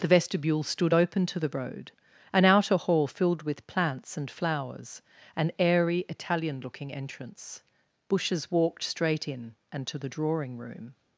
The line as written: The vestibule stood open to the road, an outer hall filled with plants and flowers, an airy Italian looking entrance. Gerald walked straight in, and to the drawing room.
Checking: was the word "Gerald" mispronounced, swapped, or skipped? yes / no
yes